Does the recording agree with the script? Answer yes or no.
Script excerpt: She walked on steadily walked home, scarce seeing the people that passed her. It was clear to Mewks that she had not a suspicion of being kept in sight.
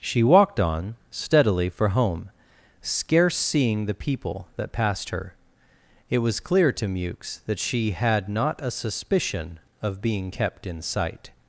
no